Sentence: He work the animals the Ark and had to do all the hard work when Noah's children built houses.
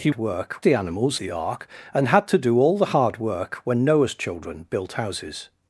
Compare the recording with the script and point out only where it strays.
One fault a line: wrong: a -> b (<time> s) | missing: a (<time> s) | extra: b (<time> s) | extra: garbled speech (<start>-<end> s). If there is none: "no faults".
no faults